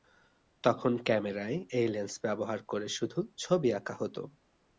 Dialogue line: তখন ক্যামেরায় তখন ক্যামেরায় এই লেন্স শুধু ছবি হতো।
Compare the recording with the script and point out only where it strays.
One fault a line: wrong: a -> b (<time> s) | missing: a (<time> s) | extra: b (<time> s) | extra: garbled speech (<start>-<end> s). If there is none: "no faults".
wrong: তখন ক্যামেরায় এই লেন্স -> এই লেন্স ব্যবহার করে (1.7 s)
extra: আঁকা (3.7 s)